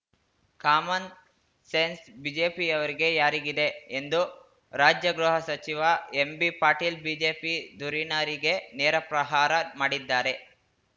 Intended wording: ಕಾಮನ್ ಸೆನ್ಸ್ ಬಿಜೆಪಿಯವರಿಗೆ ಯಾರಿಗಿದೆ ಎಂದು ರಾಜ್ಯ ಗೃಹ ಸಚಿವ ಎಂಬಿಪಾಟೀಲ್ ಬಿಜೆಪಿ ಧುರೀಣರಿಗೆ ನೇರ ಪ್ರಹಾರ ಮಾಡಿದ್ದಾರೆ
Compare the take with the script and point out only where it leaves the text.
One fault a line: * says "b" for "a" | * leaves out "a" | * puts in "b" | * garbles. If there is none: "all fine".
all fine